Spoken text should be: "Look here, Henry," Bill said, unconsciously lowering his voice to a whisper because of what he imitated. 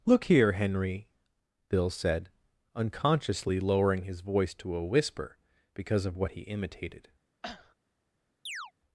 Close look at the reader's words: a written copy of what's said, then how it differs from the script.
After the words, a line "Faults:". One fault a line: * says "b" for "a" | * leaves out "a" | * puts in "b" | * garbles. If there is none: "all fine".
"Look here, Henry," Bill said, unconsciously lowering his voice to a whisper because of what he imitated.
Faults:
all fine